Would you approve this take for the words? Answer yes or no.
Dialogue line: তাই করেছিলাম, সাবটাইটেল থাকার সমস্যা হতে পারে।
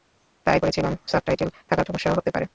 yes